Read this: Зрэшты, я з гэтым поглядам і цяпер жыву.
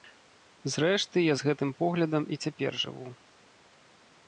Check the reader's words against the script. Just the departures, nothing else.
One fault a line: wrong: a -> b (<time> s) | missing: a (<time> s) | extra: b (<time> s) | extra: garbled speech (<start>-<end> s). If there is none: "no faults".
no faults